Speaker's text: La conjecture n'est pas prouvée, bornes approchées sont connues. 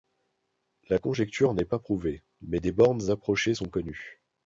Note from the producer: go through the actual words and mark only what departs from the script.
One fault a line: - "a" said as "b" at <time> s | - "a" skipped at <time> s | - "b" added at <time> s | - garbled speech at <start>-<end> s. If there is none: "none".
- "mais des" added at 2.5 s